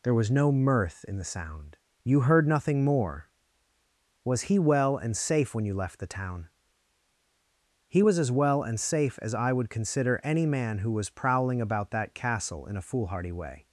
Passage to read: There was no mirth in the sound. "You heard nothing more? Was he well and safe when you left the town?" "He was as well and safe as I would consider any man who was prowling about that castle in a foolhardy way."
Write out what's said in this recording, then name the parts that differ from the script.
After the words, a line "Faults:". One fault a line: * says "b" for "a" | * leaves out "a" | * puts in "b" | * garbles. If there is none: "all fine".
There was no mirth in the sound. "You heard nothing more? Was he well and safe when you left the town?" "He was as well and safe as I would consider any man who was prowling about that castle in a foolhardy way."
Faults:
all fine